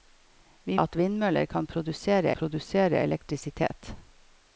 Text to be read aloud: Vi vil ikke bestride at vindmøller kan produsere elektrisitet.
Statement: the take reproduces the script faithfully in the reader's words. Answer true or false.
false